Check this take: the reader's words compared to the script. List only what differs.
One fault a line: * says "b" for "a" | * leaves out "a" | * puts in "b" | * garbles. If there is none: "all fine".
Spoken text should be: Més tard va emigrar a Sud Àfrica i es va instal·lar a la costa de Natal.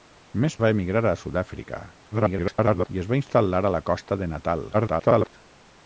* leaves out "tard"
* garbles
* garbles